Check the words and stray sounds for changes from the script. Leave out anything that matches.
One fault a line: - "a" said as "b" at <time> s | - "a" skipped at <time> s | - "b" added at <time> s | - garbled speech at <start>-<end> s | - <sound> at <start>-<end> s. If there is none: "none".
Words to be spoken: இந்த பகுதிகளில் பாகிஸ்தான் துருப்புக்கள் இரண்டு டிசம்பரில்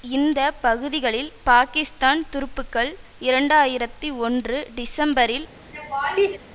- "ஆயிரத்தி ஒன்று" added at 3.5 s
- laugh at 5.7-6.4 s